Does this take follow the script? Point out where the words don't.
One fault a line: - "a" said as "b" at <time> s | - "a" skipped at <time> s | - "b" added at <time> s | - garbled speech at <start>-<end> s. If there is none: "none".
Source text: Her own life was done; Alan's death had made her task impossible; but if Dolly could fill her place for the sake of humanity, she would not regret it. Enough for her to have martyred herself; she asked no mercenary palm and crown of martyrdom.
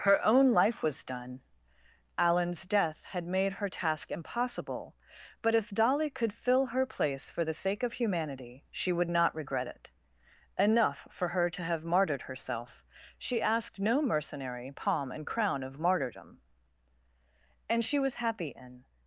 - "And she was happy in" added at 17.7 s